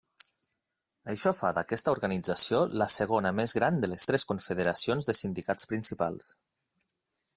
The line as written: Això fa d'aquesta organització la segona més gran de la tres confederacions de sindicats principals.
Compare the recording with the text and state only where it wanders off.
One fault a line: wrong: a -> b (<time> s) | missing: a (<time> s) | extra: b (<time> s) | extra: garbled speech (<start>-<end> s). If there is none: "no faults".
wrong: la -> les (3.9 s)